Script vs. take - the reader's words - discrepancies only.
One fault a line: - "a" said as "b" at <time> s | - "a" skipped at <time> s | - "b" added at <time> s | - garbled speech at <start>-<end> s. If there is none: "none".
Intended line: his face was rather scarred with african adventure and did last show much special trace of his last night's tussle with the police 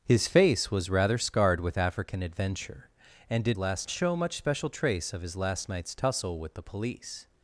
none